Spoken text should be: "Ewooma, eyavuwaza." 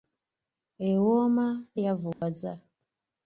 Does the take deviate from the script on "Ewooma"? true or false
false